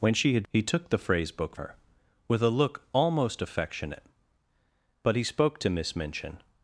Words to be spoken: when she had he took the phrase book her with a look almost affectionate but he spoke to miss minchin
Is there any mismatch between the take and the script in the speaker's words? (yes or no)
no